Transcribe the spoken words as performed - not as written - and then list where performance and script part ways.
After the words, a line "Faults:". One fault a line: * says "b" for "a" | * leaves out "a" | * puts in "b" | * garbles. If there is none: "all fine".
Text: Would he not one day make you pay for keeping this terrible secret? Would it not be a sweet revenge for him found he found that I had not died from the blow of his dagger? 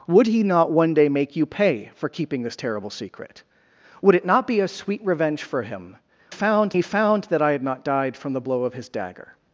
Would he not one day make you pay for keeping this terrible secret? Would it not be a sweet revenge for him found he found that I had not died from the blow of his dagger?
Faults:
all fine